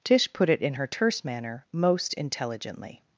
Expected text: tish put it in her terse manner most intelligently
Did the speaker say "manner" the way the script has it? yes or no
yes